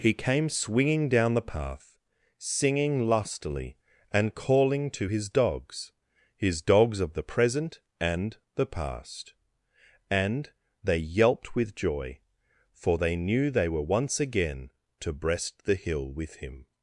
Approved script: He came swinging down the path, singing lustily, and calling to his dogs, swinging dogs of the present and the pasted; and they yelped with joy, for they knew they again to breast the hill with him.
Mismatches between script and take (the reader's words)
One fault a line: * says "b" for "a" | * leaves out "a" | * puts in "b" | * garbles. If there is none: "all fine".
* says "his" for "swinging"
* says "past" for "pasted"
* puts in "were once"